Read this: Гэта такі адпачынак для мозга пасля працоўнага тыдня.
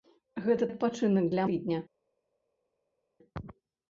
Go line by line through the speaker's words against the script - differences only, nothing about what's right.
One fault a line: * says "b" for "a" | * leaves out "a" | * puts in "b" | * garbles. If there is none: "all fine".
* leaves out "такі"
* leaves out "мозга пасля працоўнага"